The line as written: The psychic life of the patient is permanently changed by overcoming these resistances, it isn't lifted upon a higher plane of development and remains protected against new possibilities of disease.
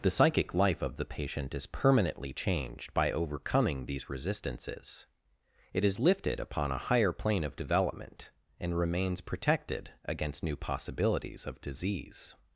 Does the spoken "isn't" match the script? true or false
false